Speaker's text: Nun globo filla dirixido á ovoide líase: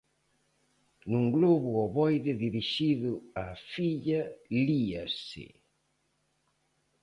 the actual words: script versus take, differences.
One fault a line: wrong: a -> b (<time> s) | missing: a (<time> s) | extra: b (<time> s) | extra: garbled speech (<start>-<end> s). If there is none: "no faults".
wrong: filla -> ovoide (1.9 s)
wrong: ovoide -> filla (3.7 s)